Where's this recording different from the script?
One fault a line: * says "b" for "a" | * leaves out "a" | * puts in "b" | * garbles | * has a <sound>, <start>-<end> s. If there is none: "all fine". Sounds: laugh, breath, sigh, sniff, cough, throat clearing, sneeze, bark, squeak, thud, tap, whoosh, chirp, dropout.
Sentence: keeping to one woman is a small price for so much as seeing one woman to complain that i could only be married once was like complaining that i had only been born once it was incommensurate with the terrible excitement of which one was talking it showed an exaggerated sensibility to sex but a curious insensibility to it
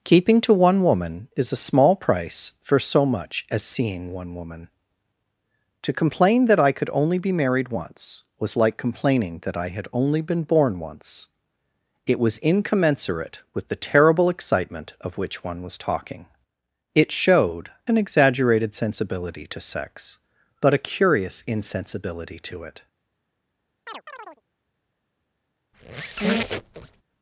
* has a chirp, 23.9-24.4 s
* has a squeak, 25.7-27.0 s